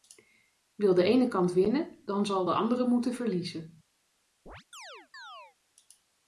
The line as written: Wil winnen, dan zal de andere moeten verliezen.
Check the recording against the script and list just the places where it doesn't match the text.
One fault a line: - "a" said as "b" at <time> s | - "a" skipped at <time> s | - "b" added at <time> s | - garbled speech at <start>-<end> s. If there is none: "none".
- "de ene kant" added at 0.9 s